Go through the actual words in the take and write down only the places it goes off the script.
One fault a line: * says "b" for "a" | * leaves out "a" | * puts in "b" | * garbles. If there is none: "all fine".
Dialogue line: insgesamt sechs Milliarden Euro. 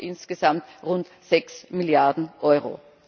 * puts in "rund"